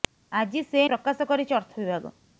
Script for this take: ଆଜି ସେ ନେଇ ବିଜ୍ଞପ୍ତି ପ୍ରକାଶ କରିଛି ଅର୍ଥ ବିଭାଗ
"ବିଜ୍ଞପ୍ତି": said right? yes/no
no